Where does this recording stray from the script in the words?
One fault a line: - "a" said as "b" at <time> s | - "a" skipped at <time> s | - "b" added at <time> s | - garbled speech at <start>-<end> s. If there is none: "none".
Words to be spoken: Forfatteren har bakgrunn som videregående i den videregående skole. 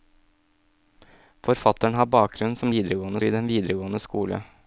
none